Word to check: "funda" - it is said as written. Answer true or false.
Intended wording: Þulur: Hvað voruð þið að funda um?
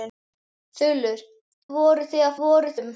false